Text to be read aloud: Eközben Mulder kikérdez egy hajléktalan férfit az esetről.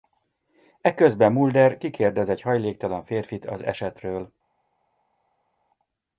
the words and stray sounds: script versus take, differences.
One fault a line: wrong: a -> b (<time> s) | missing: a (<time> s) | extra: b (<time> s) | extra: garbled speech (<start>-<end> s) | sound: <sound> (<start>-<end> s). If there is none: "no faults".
no faults